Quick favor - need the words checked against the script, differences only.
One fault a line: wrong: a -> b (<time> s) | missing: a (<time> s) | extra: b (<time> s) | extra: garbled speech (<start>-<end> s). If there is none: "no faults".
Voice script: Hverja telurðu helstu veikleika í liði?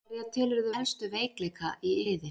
no faults